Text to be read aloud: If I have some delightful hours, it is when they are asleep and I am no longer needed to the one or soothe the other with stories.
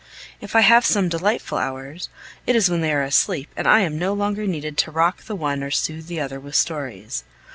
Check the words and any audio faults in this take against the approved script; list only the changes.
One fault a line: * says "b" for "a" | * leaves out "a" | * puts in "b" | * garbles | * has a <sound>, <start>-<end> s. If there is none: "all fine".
* puts in "rock"